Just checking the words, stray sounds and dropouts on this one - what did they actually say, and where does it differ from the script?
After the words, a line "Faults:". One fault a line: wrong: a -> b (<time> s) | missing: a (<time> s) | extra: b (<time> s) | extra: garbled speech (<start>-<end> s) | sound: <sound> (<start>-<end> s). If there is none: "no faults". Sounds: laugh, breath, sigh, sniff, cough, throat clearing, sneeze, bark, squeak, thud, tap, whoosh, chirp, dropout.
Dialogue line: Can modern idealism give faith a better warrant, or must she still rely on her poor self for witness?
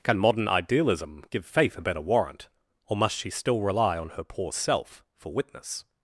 Can modern idealism give faith a better warrant, or must she still rely on her poor self for witness?
Faults:
no faults